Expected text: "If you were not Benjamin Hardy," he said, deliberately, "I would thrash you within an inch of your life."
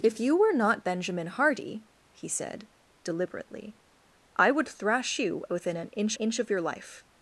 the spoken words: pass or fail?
fail